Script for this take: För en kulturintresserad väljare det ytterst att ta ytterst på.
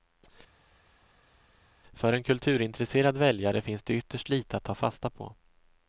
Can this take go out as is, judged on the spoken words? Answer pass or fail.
fail